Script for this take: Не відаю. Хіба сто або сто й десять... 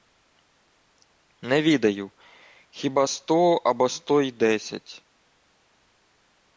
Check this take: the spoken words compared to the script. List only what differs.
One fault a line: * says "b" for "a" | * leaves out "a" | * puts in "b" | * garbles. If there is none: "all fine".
all fine